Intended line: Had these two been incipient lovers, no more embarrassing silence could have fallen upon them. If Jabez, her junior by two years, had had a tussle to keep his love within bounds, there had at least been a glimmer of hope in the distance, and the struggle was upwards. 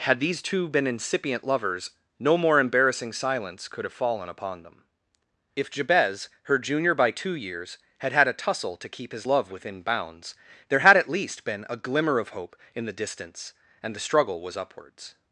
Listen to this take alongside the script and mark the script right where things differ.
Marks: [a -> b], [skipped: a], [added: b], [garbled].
Had these two been incipient lovers, no more embarrassing silence could have fallen upon them. If Jabez, her junior by two years, had had a tussle to keep his love within bounds, there had at least been a glimmer of hope in the distance, and the struggle was upwards.